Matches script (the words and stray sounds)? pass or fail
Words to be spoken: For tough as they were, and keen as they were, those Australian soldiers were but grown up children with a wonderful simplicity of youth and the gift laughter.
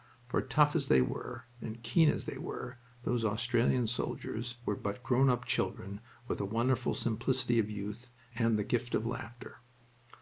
fail